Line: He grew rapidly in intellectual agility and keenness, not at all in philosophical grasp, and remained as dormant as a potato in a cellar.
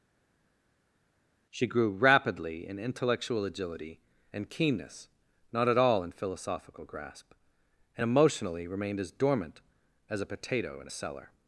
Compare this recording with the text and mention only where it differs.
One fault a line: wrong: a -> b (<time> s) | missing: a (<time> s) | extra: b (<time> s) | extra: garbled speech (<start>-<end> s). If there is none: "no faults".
wrong: He -> She (1.5 s)
extra: emotionally (8.0 s)